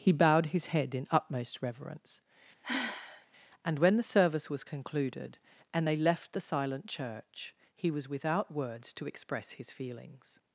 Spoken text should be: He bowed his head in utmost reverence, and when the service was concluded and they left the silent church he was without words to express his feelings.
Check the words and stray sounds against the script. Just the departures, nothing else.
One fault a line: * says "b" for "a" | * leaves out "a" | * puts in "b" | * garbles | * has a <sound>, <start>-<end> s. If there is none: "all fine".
* has a sigh, 2.6-3.3 s